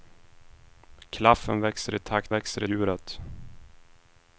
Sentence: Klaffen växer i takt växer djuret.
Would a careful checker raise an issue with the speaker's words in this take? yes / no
no